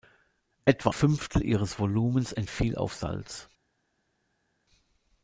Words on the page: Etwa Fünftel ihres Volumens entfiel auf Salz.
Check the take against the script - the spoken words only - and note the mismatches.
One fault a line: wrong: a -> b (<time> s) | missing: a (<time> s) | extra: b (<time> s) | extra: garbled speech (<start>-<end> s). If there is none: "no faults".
no faults